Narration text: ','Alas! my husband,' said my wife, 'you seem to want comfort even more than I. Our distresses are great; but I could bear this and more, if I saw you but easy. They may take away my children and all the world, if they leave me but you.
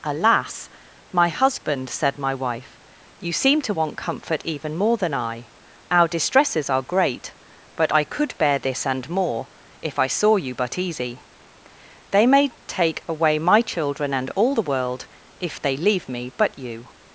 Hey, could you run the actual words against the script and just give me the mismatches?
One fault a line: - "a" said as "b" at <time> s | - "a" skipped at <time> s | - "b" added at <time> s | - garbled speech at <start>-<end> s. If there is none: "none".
none